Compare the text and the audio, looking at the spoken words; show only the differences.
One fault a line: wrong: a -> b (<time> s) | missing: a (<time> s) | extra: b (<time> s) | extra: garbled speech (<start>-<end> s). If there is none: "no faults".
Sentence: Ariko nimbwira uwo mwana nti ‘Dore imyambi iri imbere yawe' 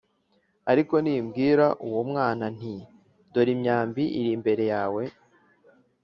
no faults